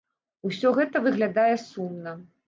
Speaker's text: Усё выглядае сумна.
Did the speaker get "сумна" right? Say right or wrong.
right